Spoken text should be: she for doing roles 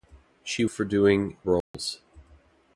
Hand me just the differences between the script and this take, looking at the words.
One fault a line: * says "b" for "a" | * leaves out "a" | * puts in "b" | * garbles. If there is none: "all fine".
all fine